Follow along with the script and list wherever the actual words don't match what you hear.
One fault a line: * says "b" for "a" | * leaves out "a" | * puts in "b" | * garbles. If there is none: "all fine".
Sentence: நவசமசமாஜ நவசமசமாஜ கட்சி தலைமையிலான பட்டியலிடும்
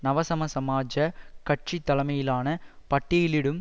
* leaves out "நவசமசமாஜ"